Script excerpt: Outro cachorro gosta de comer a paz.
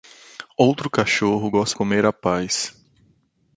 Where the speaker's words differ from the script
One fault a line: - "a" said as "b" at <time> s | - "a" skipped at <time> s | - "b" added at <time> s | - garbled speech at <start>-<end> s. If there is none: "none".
- "de" skipped at 1.8 s